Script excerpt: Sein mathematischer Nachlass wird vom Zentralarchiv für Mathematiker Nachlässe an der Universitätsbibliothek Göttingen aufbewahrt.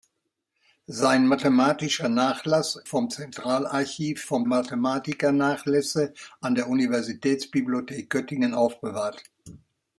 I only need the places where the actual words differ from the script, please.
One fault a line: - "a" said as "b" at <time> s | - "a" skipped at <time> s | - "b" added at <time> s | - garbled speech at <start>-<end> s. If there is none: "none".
- "wird" skipped at 2.8 s
- "für" said as "vom" at 4.2 s